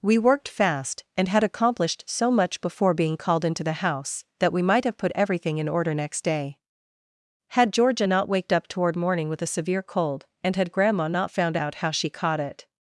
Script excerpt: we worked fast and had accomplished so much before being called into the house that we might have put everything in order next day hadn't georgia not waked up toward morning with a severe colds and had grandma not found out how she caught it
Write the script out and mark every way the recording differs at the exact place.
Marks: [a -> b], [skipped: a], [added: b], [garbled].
we worked fast and had accomplished so much before being called into the house that we might have put everything in order next day [hadn't -> had] georgia not waked up toward morning with a severe [colds -> cold] and had grandma not found out how she caught it